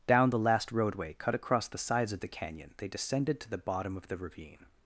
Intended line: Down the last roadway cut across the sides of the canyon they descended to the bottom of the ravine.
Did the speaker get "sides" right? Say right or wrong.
right